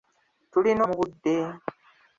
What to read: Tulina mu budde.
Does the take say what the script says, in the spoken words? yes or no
yes